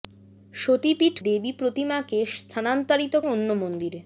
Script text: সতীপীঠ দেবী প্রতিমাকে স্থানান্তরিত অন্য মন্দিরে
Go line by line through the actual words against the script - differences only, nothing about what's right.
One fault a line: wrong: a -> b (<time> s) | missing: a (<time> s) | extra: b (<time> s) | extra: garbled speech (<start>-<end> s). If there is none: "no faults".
no faults